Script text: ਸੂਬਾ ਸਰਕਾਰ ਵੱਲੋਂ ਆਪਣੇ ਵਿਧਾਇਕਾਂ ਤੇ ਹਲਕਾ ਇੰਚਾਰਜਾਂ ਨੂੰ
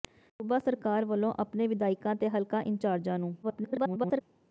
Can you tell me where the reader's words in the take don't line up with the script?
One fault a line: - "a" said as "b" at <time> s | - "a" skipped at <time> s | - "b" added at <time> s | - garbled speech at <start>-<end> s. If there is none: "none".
- garbled speech at 3.4-4.2 s